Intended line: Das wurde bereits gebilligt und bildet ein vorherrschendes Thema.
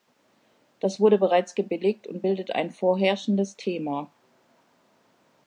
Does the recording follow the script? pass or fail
pass